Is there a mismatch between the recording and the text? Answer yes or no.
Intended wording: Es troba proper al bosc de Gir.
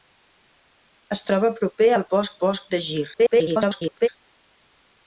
yes